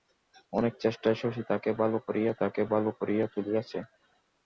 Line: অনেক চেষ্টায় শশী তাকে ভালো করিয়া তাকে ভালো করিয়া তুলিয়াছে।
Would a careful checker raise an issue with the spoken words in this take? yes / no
no